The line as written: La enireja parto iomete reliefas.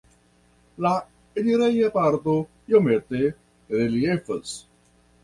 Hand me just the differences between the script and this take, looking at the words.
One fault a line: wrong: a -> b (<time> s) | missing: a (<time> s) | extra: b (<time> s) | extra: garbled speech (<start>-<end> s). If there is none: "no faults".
no faults